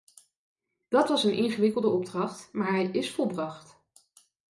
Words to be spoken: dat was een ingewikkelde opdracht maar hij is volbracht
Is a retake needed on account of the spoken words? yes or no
no